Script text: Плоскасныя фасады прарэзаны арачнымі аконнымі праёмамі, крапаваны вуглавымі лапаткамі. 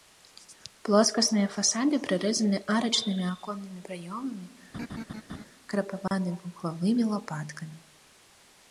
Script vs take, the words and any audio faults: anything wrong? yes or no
yes